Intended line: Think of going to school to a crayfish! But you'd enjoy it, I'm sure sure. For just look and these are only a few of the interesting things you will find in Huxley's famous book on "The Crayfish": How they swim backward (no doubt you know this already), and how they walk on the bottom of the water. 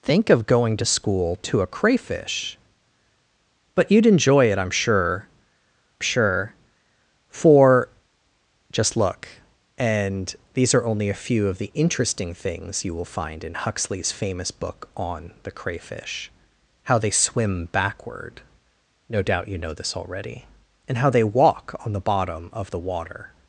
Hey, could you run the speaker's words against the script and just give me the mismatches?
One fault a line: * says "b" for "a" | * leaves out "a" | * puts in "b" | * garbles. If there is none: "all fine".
all fine